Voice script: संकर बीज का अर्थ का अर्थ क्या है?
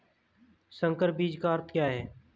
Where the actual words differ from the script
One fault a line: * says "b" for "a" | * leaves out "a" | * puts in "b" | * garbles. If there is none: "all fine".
* leaves out "का अर्थ"